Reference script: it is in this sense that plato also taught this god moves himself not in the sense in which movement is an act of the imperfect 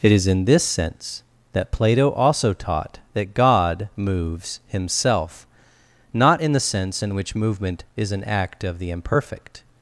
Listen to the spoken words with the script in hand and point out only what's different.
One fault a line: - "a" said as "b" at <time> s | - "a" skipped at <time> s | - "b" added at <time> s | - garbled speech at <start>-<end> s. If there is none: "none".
- "this" said as "that" at 3.1 s